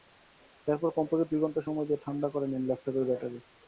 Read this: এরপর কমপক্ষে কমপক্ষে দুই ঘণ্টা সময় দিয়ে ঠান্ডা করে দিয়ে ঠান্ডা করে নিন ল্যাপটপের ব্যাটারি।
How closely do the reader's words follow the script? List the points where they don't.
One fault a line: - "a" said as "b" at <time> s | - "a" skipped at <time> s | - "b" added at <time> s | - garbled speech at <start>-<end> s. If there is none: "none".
- "কমপক্ষে" skipped at 1.3 s
- "দিয়ে ঠান্ডা করে" skipped at 2.5 s